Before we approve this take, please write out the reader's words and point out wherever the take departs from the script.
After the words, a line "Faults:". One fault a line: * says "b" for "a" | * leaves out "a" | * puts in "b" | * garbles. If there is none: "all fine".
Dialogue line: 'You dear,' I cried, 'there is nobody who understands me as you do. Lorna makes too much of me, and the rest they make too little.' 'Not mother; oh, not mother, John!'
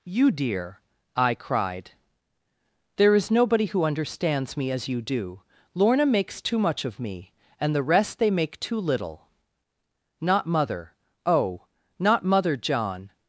'You dear,' I cried, 'there is nobody who understands me as you do. Lorna makes too much of me, and the rest they make too little.' 'Not mother; oh, not mother, John!'
Faults:
all fine